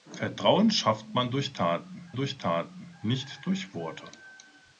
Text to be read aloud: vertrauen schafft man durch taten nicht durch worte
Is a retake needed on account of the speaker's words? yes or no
yes